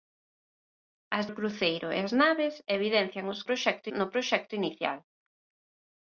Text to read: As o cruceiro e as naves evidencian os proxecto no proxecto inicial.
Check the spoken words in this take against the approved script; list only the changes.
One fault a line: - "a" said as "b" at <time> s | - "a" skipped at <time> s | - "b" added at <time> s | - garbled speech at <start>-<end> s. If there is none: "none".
none